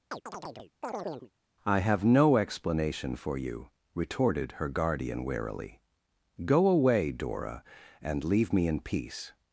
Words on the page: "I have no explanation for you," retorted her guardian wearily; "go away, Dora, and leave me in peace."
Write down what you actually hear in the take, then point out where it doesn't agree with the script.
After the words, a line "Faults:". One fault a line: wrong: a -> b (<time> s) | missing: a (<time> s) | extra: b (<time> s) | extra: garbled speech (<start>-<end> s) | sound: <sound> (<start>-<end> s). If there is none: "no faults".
"I have no explanation for you," retorted her guardian wearily; "go away, Dora, and leave me in peace."
Faults:
sound: chirp (0.1-1.3 s)